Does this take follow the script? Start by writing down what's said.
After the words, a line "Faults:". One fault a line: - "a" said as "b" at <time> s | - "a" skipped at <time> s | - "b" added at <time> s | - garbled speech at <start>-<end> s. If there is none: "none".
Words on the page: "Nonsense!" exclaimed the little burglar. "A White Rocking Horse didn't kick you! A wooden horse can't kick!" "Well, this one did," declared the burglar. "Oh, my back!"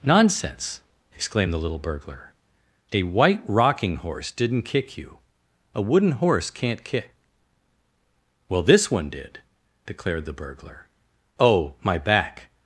"Nonsense!" exclaimed the little burglar. "A White Rocking Horse didn't kick you! A wooden horse can't kick!" "Well, this one did," declared the burglar. "Oh, my back!"
Faults:
none